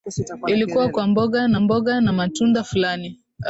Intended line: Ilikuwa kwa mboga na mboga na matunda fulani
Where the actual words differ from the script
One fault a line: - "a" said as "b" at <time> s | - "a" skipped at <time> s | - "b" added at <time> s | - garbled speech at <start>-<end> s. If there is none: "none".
none